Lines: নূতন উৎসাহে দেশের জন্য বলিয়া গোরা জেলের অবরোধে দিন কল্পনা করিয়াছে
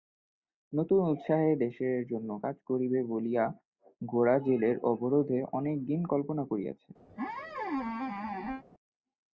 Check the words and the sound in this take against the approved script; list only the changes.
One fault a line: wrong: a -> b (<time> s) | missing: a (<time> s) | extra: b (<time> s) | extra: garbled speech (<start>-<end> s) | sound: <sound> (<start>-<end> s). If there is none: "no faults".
extra: কাজ করিবে (2.4 s)
extra: অনেক (5.6 s)
sound: squeak (7.1-8.6 s)